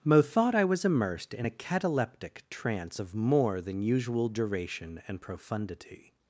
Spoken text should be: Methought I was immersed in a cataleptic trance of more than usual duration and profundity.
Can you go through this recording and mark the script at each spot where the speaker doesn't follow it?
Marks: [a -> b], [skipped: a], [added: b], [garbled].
Methought I was immersed in a cataleptic trance of more than usual duration and profundity.